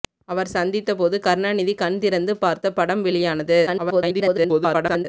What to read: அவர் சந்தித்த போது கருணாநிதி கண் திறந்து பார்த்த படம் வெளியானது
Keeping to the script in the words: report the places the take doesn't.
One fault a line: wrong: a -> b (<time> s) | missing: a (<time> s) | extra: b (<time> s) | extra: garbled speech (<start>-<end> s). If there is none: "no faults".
extra: garbled speech (3.7-5.1 s)